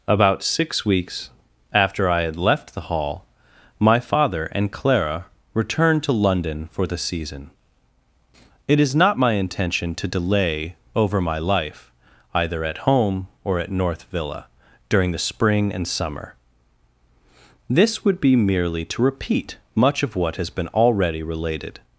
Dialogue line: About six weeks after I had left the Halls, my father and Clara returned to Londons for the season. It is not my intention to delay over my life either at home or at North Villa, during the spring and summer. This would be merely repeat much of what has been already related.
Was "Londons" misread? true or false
true